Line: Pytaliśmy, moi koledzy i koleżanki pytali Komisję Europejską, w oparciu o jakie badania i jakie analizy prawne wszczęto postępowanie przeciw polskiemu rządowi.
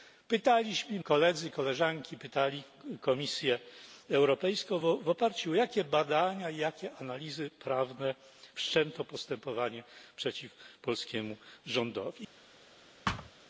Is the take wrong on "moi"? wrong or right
wrong